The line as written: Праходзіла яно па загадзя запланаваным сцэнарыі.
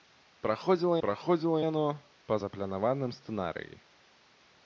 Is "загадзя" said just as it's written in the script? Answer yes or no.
no